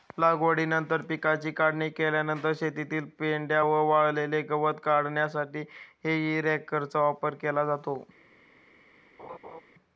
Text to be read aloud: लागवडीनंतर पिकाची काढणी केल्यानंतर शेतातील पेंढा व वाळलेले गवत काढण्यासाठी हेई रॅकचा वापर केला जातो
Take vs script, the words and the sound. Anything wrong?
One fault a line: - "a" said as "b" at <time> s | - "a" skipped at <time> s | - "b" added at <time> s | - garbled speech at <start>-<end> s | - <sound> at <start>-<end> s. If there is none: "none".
- laugh at 9.2-9.6 s